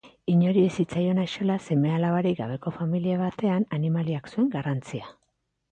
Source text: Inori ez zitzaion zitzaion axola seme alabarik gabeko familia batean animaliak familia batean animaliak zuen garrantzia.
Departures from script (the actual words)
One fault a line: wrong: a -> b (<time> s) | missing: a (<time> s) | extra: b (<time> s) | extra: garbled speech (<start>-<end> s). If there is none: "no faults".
missing: zitzaion (1.2 s)
missing: familia batean animaliak (4.3 s)